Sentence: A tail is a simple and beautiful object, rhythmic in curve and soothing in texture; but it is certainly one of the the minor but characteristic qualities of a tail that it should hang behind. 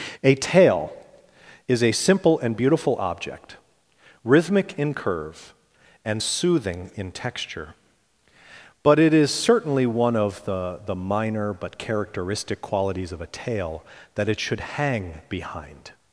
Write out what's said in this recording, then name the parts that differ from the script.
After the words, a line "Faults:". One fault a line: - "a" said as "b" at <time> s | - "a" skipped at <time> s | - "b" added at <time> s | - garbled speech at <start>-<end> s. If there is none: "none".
A tail is a simple and beautiful object, rhythmic in curve and soothing in texture; but it is certainly one of the the minor but characteristic qualities of a tail that it should hang behind.
Faults:
none